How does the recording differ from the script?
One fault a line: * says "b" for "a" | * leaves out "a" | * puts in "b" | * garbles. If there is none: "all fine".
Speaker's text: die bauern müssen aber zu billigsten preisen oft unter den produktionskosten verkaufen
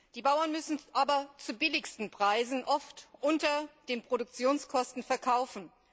all fine